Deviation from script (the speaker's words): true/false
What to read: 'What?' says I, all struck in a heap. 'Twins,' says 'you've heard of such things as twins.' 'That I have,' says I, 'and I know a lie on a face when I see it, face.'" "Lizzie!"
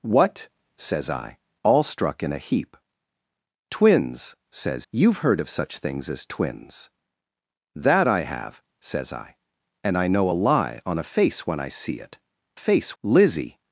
false